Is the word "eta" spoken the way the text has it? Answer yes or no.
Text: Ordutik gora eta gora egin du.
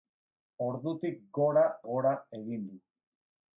no